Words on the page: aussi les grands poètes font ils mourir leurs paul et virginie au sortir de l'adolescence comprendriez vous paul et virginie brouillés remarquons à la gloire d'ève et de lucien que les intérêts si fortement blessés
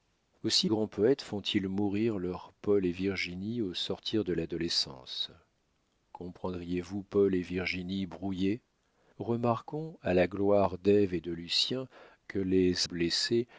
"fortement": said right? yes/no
no